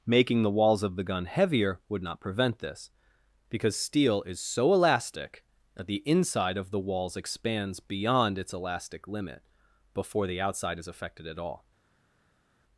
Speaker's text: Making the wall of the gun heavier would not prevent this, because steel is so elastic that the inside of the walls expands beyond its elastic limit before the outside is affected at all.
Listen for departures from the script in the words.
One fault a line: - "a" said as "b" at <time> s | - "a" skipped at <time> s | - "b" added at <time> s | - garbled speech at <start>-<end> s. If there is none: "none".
- "wall" said as "walls" at 0.5 s